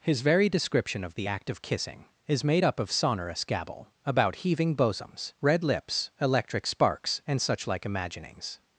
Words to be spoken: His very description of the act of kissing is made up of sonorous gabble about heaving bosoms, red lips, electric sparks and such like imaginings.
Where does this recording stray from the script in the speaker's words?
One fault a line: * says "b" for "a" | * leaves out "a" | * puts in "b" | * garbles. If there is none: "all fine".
all fine